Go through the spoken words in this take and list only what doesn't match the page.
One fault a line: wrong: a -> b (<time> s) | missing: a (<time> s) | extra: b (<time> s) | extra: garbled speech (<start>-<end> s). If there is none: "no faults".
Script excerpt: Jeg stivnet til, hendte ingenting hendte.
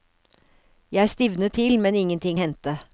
wrong: hendte -> men (1.8 s)